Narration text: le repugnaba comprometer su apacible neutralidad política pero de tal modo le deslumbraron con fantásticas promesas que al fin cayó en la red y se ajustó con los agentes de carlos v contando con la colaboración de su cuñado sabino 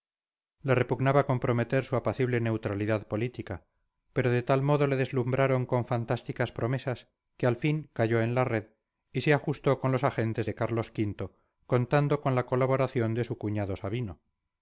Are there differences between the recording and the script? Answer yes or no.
no